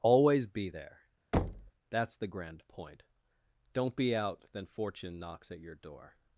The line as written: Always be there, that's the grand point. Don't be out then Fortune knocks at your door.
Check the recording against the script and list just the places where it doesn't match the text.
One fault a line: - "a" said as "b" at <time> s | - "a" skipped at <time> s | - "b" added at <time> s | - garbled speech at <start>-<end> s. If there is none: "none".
none